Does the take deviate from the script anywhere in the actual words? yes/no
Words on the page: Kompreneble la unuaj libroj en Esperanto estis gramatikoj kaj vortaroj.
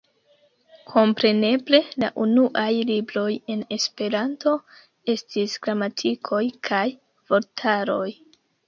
no